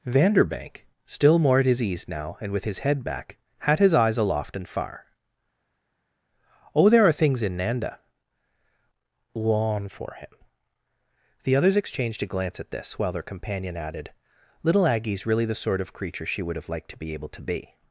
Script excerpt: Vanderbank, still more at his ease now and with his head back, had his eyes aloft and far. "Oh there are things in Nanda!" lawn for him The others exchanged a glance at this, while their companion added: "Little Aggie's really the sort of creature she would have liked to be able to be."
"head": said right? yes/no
yes